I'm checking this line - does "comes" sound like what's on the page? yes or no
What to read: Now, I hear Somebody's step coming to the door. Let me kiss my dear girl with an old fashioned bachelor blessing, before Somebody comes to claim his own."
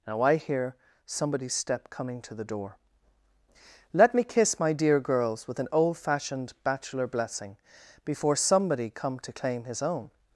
no